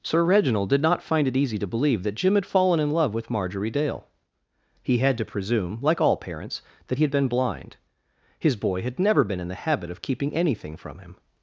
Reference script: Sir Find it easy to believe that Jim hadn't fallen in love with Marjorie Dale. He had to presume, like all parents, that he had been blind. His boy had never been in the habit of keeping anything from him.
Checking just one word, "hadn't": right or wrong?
wrong